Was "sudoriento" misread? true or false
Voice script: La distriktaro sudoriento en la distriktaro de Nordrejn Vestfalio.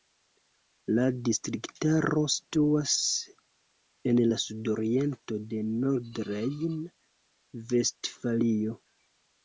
true